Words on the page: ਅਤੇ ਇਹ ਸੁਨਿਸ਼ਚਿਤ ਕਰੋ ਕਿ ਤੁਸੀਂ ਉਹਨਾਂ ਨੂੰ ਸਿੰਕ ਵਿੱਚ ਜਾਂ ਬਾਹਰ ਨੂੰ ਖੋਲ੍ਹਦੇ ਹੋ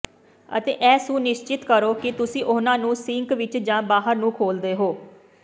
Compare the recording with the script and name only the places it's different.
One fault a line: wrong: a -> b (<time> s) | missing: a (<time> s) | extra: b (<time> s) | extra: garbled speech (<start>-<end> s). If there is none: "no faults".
no faults